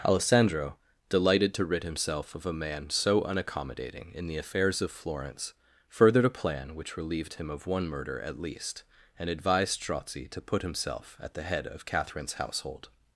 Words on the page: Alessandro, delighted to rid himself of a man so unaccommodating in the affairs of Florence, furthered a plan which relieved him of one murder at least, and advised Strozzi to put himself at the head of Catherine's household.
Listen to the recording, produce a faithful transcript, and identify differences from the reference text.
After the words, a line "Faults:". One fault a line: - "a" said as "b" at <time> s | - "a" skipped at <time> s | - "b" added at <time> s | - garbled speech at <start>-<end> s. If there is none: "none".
Alessandro, delighted to rid himself of a man so unaccommodating in the affairs of Florence, furthered a plan which relieved him of one murder at least, and advised Strozzi to put himself at the head of Catherine's household.
Faults:
none